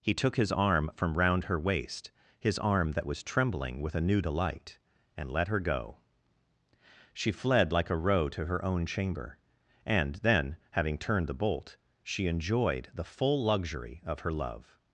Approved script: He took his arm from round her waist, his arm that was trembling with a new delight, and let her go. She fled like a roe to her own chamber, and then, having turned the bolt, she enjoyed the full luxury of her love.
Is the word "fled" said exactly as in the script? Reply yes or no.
yes